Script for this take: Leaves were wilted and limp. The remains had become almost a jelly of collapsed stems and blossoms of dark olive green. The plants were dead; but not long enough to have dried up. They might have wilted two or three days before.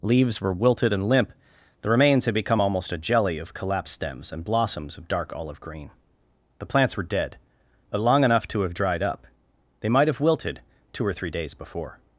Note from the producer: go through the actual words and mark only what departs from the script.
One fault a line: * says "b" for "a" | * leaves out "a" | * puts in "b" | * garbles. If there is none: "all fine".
* leaves out "not"